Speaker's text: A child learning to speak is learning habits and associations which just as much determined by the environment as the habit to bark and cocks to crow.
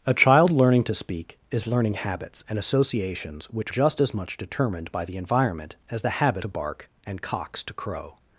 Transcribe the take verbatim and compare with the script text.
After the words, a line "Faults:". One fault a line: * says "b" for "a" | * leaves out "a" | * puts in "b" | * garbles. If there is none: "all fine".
A child learning to speak is learning habits and associations which just as much determined by the environment as the habit to bark and cocks to crow.
Faults:
all fine